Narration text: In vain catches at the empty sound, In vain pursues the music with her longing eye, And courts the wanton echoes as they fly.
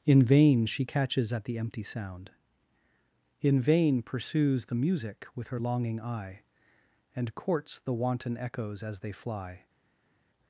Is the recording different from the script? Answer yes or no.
yes